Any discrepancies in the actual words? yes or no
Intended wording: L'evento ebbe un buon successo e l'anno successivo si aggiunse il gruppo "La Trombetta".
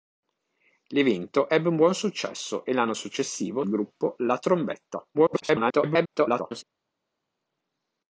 yes